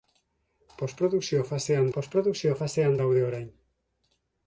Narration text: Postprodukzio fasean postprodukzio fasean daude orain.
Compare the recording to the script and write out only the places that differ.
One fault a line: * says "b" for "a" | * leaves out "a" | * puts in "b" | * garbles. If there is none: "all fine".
all fine